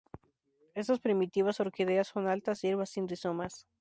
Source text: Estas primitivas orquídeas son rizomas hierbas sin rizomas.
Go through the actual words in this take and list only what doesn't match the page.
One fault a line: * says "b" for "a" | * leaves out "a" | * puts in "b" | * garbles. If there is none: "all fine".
* says "altas" for "rizomas"